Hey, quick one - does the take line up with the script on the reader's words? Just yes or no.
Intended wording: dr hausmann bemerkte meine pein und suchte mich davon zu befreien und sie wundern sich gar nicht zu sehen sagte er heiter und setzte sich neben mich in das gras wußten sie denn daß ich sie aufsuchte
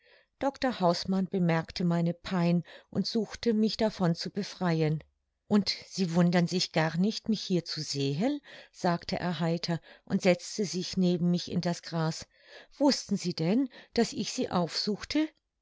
no